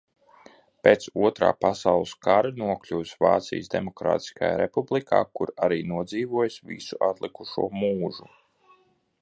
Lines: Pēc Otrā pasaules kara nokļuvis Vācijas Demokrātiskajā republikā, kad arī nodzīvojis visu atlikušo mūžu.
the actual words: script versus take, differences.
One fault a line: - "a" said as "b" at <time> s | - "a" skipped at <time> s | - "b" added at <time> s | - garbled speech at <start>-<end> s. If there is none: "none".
- "kad" said as "kur" at 5.4 s